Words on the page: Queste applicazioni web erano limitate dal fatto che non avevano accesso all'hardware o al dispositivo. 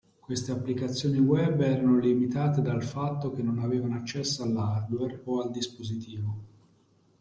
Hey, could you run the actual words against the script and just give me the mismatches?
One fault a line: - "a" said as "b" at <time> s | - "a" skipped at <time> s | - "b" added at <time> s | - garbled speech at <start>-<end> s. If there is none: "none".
none